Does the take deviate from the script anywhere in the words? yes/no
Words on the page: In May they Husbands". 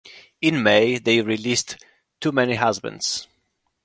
yes